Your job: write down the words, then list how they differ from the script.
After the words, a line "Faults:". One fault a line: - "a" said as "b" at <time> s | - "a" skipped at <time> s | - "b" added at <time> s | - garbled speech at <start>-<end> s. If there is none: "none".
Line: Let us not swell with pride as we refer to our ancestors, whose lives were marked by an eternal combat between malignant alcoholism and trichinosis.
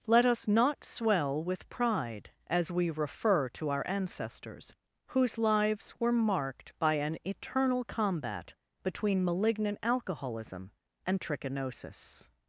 Let us not swell with pride as we refer to our ancestors, whose lives were marked by an eternal combat between malignant alcoholism and trichinosis.
Faults:
none